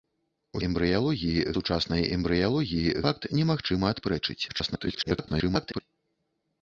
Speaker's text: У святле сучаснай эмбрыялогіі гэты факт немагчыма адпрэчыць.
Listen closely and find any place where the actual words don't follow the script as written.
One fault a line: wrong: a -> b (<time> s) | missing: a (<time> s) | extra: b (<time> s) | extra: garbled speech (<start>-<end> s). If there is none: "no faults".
wrong: святле -> эмбрыялогіі (0.7 s)
missing: гэты (2.9 s)
extra: garbled speech (4.5-5.8 s)